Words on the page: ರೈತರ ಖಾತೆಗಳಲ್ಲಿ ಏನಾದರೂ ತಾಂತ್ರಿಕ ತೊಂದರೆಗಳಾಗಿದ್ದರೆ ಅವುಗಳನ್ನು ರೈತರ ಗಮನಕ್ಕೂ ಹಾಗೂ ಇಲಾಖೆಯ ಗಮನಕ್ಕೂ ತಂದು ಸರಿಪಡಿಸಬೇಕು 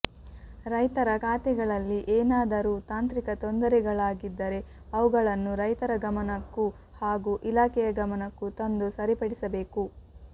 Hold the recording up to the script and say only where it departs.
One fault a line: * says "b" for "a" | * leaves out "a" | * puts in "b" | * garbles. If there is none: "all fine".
all fine